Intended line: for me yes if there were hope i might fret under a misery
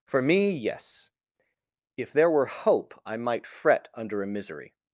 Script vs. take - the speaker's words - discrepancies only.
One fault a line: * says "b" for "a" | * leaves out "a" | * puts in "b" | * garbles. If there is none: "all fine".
all fine